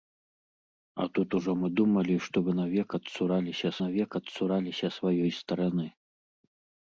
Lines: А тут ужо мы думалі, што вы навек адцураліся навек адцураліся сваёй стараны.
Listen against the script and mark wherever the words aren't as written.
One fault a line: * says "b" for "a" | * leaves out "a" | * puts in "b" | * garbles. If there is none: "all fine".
all fine